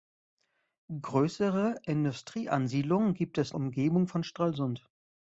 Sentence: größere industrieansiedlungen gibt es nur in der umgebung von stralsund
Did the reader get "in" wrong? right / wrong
wrong